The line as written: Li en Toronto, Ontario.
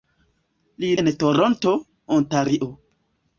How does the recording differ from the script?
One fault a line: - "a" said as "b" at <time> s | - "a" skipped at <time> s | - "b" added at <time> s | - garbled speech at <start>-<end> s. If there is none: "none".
none